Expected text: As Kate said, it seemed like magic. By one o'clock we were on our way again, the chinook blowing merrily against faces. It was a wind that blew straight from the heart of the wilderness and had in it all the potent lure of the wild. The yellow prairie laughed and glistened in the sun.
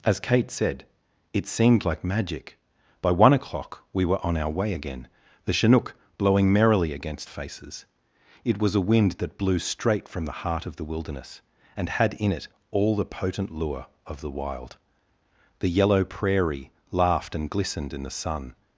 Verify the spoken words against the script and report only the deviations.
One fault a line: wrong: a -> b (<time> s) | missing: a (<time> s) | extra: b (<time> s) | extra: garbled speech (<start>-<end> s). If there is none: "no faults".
no faults